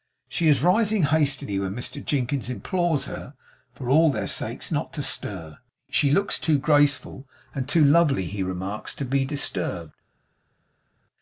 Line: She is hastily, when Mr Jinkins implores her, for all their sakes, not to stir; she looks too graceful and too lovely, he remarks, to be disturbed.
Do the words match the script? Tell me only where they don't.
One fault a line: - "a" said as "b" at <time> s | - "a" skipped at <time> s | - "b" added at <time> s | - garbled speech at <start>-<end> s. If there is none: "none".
- "rising" added at 0.6 s